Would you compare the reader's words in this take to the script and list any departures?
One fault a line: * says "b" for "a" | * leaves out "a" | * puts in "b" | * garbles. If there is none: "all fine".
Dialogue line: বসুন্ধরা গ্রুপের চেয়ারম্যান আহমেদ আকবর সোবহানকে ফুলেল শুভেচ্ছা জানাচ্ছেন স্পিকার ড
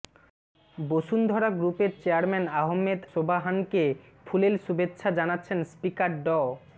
* leaves out "আকবর"